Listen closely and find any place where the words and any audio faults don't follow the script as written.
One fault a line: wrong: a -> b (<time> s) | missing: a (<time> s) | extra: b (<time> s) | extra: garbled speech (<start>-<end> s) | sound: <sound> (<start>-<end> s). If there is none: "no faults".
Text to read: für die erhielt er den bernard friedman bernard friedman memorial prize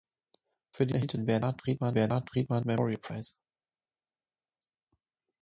no faults